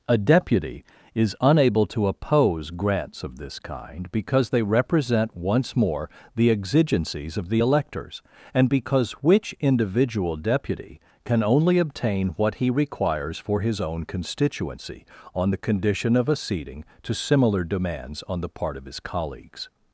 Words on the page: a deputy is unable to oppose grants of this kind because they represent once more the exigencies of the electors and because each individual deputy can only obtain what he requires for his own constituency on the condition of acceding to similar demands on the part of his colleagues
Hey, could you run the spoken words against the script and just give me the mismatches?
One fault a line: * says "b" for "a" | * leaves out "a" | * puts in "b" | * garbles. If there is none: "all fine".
* says "which" for "each"